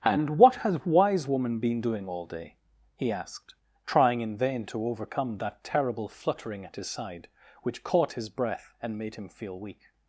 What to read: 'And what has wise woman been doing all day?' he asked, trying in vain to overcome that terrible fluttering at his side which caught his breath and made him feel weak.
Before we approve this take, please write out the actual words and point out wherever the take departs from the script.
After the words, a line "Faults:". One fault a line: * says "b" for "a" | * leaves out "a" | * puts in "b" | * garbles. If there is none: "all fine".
'And what has wise woman been doing all day?' he asked, trying in vain to overcome that terrible fluttering at his side which caught his breath and made him feel weak.
Faults:
all fine